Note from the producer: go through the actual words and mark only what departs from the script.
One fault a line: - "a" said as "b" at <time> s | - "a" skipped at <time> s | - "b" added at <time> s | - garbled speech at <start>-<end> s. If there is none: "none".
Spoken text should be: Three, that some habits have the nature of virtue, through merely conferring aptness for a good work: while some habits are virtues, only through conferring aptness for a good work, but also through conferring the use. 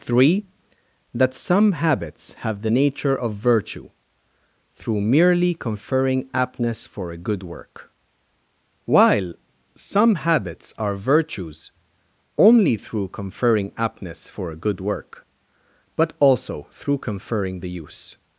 none